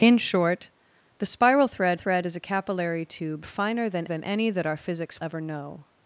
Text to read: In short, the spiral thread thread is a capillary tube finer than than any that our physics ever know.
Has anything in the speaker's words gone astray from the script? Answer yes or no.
no